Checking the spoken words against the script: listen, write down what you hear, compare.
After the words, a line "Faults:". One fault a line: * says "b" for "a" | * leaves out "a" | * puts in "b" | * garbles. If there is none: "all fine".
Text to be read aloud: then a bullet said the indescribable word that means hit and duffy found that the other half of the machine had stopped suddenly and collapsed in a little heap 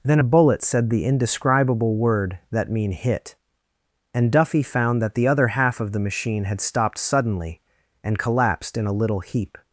then a bullet said the indescribable word that mean hit and duffy found that the other half of the machine had stopped suddenly and collapsed in a little heap
Faults:
* says "mean" for "means"